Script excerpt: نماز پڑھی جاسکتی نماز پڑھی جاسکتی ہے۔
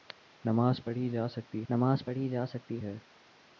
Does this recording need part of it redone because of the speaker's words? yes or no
no